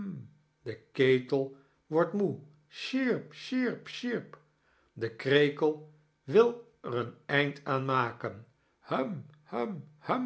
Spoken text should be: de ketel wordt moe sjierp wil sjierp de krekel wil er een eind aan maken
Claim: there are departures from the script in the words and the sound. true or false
true